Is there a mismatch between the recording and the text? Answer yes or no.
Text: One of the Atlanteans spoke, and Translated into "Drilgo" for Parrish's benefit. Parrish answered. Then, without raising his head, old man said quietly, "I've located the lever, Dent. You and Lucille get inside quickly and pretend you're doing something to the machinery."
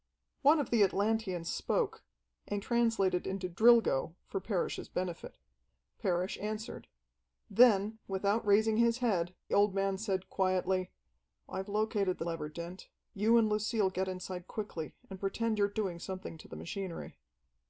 no